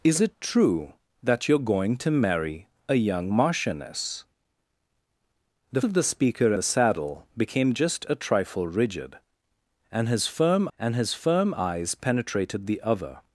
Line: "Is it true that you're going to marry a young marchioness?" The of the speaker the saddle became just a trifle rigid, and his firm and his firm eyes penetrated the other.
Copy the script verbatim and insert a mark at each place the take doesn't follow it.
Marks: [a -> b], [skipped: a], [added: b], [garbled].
"Is it true that you're going to marry a young marchioness?" The of the speaker the saddle became just a trifle rigid, and his firm and his firm eyes penetrated the other.